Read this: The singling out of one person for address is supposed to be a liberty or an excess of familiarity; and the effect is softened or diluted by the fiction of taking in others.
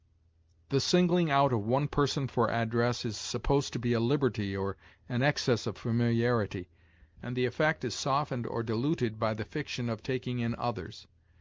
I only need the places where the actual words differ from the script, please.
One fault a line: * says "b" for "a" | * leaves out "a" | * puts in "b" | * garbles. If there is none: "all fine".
all fine